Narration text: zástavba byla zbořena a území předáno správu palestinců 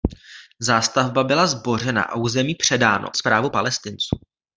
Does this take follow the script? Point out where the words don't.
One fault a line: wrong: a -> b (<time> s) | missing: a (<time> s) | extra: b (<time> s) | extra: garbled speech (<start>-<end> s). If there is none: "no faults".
no faults